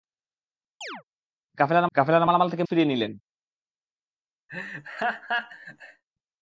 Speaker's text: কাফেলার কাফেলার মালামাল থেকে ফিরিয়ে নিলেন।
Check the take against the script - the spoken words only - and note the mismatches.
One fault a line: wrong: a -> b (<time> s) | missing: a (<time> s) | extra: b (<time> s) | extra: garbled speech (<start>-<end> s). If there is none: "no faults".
no faults